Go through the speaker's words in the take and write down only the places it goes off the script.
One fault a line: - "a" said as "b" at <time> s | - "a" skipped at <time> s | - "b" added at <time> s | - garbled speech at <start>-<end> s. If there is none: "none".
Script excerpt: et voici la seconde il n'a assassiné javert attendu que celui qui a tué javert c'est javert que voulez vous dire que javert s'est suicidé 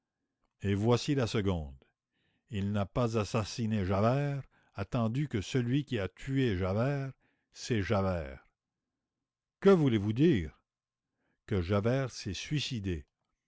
- "pas" added at 2.9 s